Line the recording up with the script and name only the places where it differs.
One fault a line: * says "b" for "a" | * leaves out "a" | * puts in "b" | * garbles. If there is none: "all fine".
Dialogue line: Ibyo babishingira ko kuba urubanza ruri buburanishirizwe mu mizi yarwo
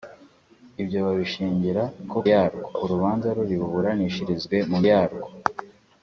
* says "yarwo" for "kuba"
* leaves out "mizi"